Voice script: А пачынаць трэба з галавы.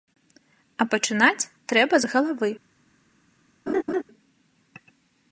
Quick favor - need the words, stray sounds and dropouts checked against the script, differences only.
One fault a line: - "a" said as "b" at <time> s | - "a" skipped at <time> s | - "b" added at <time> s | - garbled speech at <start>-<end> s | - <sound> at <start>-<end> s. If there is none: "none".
- laugh at 3.7-4.0 s